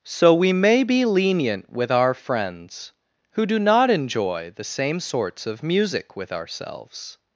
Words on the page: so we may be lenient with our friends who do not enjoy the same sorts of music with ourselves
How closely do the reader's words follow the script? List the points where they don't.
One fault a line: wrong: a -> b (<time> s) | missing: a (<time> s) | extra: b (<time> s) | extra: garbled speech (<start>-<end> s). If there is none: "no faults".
no faults